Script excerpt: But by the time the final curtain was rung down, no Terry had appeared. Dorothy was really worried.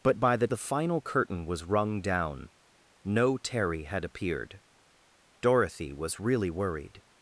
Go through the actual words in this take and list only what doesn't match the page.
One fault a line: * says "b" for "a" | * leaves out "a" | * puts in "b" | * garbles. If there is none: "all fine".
* leaves out "time"